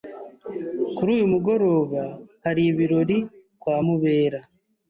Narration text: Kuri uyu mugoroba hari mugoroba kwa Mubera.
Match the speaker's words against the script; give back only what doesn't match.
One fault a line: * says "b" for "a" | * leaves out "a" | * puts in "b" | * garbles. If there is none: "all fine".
* says "ibirori" for "mugoroba"